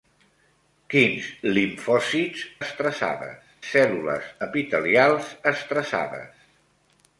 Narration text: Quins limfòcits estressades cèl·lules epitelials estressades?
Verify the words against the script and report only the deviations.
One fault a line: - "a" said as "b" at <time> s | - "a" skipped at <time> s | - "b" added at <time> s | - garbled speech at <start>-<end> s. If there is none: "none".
none